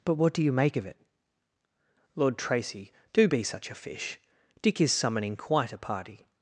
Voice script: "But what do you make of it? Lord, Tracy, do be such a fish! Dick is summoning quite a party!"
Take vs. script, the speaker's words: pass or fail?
pass